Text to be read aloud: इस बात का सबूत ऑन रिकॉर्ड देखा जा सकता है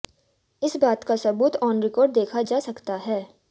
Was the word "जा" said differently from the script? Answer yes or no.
no